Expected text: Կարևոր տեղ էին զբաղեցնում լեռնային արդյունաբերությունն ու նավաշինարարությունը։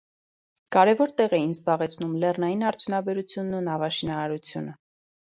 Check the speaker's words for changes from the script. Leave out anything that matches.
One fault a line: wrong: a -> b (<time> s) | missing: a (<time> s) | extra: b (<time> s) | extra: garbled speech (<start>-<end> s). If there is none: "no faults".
no faults